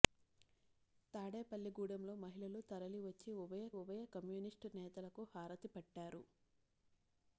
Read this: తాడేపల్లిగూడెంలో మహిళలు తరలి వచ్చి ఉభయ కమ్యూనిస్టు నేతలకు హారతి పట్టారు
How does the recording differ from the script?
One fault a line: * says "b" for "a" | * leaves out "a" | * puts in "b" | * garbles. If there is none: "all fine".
* puts in "ఉభయ"